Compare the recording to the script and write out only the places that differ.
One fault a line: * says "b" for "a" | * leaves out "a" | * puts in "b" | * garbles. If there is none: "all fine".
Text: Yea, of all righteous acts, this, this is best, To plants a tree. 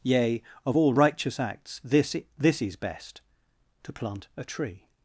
* says "plant" for "plants"